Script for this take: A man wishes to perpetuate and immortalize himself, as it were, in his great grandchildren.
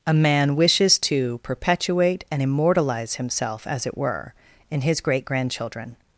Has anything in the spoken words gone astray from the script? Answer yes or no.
no